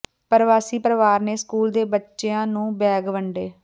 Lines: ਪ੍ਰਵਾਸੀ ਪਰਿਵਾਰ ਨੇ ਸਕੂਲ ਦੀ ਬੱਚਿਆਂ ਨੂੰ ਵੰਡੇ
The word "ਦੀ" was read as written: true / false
false